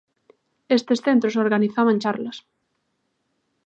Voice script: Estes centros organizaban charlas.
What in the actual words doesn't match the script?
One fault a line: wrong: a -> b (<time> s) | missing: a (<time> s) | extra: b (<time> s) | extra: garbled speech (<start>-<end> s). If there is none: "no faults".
no faults